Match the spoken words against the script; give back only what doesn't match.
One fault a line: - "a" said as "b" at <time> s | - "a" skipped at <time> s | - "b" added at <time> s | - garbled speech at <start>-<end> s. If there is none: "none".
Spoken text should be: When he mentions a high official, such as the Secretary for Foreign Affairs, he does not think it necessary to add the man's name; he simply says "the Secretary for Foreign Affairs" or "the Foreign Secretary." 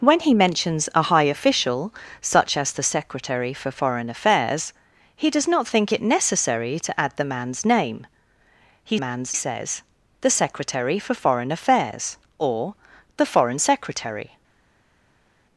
- "simply" said as "man's" at 9.0 s